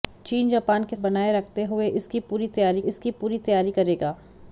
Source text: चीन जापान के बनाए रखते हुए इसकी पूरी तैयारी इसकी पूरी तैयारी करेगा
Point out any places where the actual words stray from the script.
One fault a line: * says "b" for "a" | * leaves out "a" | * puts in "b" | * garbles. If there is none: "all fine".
all fine